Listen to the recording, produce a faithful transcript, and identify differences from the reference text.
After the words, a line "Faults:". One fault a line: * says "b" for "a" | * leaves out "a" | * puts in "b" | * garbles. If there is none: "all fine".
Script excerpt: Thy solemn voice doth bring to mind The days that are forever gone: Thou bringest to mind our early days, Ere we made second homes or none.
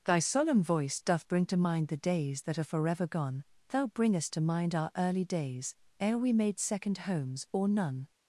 Thy solemn voice doth bring to mind The days that are forever gone: Thou bringest to mind our early days, Ere we made second homes or none.
Faults:
all fine